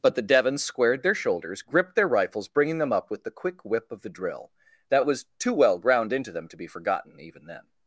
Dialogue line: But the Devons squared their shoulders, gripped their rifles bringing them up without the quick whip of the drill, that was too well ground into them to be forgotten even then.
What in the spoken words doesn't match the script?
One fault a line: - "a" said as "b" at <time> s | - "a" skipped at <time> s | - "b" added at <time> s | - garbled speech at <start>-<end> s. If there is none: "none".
- "without" said as "with" at 3.1 s